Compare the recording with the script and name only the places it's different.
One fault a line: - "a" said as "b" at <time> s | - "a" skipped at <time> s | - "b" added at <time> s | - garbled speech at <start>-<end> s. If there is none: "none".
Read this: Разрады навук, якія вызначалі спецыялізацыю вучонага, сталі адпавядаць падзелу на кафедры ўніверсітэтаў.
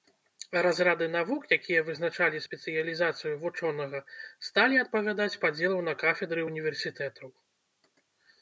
none